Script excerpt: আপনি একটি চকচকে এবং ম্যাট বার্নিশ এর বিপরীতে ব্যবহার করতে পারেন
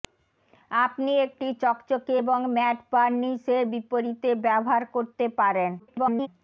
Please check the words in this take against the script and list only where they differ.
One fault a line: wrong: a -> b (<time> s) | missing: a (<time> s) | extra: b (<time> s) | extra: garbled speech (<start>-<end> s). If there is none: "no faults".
extra: garbled speech (5.8-6.3 s)